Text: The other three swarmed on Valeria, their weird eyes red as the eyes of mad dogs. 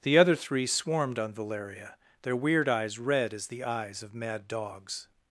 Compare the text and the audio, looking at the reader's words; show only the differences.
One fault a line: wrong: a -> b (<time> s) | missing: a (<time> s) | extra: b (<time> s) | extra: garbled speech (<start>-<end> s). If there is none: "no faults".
no faults